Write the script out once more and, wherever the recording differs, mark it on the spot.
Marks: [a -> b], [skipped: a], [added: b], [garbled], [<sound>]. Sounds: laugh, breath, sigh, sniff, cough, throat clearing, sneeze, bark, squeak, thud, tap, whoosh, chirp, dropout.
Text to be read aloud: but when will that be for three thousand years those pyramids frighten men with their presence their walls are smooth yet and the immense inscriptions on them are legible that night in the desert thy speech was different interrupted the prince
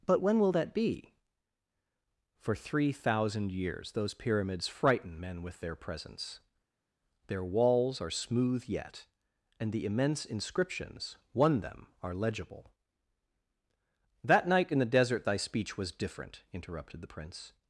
but when will that be for three thousand years those pyramids frighten men with their presence their walls are smooth yet and the immense inscriptions [on -> one] them are legible that night in the desert thy speech was different interrupted the prince